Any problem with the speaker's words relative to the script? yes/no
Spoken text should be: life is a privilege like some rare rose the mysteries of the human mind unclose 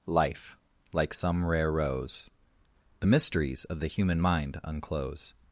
yes